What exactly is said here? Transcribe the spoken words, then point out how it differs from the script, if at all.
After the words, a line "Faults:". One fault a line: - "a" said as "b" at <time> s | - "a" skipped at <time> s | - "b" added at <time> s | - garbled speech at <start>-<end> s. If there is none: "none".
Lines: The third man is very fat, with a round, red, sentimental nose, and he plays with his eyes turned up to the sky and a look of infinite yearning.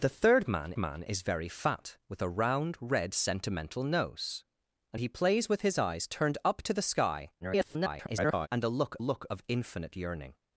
The third man man is very fat, with a round, red, sentimental nose, and he plays with his eyes turned up to the sky [garbled] and a look look of infinite yearning.
Faults:
- "man" added at 0.8 s
- garbled speech at 7.4-8.5 s
- "look" added at 9.0 s